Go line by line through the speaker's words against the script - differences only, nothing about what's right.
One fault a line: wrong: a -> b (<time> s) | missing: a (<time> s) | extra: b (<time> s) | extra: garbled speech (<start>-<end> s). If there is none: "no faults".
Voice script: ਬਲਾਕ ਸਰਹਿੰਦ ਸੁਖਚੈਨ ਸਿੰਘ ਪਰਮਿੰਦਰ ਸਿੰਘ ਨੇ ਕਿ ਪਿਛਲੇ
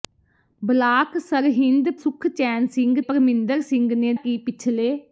no faults